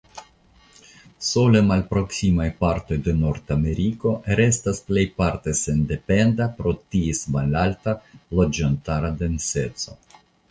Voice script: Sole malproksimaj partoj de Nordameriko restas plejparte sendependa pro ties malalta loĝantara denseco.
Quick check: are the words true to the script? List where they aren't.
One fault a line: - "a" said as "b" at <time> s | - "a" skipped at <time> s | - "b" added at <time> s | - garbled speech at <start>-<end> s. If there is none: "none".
none